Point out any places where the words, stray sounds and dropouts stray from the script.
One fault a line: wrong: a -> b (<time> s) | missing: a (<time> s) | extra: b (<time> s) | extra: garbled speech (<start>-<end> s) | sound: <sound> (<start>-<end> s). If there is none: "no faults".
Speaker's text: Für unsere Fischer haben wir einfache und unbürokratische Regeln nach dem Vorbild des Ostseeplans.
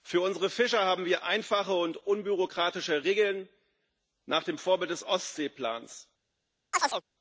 sound: chirp (6.7-7.0 s)